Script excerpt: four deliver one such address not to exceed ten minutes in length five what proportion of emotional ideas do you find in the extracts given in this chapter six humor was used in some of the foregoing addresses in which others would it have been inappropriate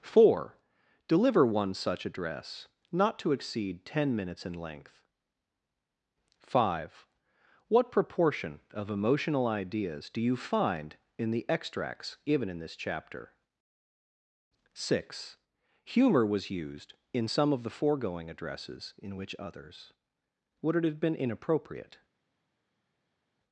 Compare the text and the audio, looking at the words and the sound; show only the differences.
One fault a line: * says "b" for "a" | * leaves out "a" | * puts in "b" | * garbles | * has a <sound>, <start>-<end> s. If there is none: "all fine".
all fine